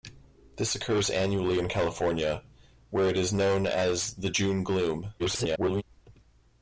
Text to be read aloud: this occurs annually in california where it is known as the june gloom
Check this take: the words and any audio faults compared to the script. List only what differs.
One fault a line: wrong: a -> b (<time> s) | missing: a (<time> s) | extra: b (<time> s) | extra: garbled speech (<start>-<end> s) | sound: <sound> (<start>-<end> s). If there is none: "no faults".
extra: garbled speech (5.2-5.8 s)